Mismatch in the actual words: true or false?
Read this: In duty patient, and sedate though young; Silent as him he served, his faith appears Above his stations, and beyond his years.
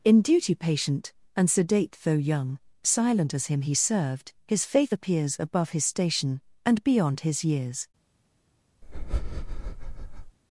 true